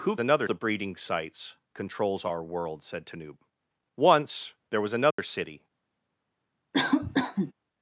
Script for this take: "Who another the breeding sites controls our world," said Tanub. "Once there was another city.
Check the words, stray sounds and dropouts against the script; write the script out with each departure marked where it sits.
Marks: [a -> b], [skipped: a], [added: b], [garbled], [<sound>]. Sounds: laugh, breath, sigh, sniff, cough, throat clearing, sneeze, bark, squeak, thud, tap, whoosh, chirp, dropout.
"Who another the breeding sites controls our world," said Tanub. "Once there was another [dropout] city. [cough]